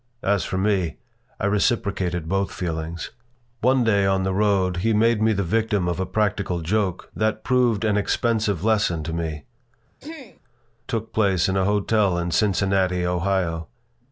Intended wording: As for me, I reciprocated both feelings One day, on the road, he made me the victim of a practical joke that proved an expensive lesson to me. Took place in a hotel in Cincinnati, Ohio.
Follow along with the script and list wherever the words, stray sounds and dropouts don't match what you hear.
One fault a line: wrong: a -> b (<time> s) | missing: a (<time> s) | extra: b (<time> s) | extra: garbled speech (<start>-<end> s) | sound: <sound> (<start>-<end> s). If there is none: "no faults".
sound: throat clearing (10.0-10.4 s)